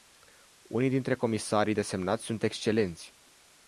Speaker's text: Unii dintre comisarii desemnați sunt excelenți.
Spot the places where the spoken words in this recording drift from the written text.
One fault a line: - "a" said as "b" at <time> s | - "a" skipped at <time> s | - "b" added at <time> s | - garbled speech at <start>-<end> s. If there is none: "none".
none